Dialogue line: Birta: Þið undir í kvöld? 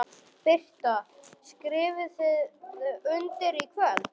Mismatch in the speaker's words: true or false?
true